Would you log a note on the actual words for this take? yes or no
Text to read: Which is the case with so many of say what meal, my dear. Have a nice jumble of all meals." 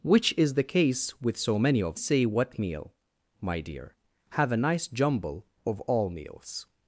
no